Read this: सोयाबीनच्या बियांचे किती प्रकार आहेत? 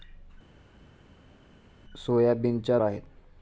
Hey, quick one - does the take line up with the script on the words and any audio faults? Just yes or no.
no